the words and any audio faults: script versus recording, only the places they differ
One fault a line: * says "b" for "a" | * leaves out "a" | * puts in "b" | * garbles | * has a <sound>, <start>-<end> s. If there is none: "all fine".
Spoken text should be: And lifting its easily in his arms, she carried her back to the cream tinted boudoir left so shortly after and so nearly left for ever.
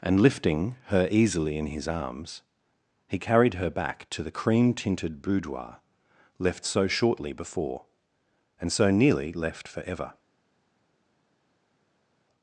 * says "her" for "its"
* says "he" for "she"
* says "before" for "after"